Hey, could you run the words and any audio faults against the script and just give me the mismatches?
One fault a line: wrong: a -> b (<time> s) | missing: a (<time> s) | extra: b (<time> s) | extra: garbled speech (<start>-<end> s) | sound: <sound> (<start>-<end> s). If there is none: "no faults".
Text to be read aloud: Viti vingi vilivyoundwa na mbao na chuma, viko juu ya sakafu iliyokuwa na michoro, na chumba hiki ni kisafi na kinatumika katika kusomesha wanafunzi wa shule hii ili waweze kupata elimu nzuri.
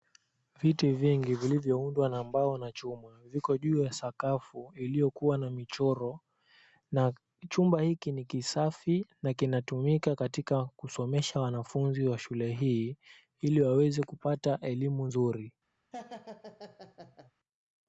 sound: laugh (15.9-17.3 s)